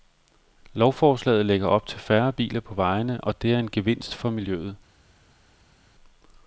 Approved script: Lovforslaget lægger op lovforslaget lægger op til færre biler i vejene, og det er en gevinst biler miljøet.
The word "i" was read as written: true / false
false